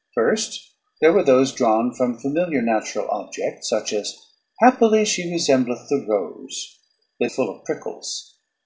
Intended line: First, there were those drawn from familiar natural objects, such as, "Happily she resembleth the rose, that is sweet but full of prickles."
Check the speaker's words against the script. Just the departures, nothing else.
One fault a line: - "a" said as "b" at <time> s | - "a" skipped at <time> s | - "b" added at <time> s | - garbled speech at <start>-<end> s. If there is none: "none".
- "is sweet but" skipped at 7.3 s